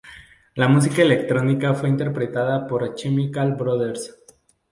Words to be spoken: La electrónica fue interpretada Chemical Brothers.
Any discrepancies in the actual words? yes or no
yes